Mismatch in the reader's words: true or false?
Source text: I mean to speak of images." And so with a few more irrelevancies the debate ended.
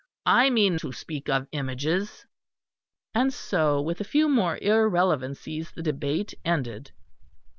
false